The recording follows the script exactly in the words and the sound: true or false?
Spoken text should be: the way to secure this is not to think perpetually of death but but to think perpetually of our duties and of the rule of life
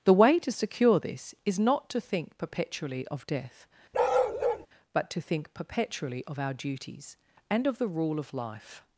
false